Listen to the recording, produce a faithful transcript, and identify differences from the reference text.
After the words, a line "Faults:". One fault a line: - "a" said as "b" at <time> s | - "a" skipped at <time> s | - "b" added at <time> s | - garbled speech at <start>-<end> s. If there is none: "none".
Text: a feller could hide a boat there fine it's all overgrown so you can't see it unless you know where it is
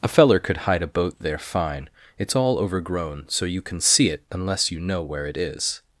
a feller could hide a boat there fine it's all overgrown so you can see it unless you know where it is
Faults:
- "can't" said as "can" at 3.6 s